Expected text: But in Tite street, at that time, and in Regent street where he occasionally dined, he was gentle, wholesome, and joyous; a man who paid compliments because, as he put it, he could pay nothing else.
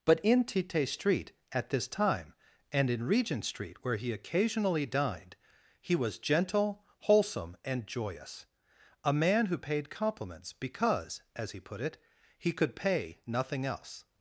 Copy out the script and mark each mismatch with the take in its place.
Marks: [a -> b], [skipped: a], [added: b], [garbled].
But in Tite street, at [that -> this] time, and in Regent street where he occasionally dined, he was gentle, wholesome, and joyous; a man who paid compliments because, as he put it, he could pay nothing else.